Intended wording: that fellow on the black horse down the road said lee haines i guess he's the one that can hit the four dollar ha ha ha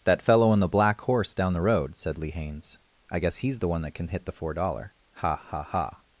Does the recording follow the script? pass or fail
pass